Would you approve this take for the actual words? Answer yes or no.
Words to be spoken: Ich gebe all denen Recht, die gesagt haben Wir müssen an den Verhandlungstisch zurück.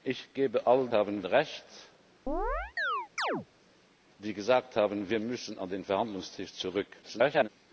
no